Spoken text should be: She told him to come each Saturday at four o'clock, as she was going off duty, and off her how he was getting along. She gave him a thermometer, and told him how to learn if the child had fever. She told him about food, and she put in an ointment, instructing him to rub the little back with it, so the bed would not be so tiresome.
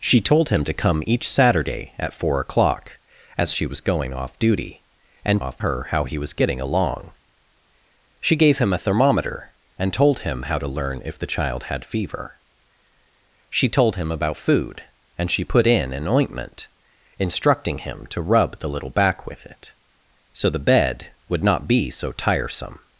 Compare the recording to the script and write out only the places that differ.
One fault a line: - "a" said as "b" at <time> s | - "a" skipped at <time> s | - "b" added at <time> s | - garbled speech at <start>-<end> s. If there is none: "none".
none